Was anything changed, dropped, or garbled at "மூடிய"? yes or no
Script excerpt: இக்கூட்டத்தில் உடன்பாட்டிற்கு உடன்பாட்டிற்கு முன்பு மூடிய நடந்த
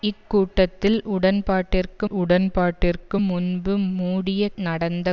no